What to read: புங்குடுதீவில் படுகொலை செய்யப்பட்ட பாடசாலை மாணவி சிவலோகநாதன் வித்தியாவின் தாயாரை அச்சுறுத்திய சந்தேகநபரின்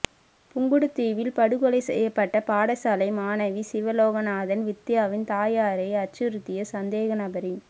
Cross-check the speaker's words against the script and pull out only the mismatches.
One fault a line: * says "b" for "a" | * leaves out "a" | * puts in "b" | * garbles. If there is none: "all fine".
all fine